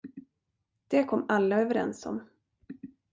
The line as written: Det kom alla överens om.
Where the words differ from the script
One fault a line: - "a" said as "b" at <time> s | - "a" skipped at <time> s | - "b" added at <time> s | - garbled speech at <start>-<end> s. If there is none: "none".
none